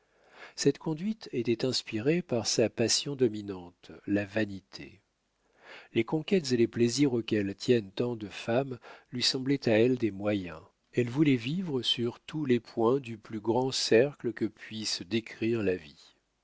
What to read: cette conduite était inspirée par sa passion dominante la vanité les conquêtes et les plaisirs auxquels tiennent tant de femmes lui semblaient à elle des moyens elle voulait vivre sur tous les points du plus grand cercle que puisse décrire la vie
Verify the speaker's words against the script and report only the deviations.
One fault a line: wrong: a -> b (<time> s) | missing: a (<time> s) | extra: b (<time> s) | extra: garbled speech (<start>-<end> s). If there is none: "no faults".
no faults